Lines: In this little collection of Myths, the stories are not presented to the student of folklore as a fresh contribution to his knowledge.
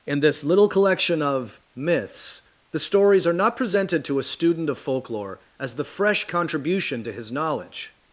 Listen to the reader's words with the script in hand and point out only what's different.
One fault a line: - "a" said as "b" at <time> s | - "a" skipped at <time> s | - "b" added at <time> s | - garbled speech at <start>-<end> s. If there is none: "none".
- "the" said as "a" at 4.2 s
- "a" said as "the" at 5.7 s